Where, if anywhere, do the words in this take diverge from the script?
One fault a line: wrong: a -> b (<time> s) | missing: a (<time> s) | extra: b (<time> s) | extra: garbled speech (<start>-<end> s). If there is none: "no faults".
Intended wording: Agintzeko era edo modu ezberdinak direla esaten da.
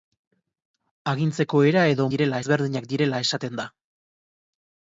wrong: modu -> direla (2.1 s)